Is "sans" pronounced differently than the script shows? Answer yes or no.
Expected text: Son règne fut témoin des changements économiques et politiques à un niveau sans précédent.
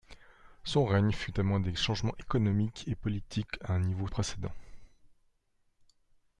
yes